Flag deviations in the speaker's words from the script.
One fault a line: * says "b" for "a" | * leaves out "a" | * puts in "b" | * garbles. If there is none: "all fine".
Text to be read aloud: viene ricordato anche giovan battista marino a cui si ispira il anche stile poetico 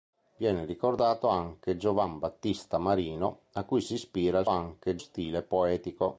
all fine